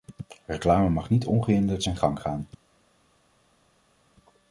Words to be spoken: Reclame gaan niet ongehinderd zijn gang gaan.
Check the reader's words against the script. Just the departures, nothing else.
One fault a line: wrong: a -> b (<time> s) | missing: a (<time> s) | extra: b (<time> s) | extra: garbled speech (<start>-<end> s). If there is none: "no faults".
wrong: gaan -> mag (0.9 s)